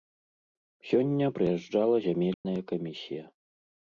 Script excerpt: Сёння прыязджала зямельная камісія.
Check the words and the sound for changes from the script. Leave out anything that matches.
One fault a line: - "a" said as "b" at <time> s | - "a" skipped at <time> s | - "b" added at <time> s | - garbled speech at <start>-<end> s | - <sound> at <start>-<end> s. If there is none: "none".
- dropout at 2.3-2.5 s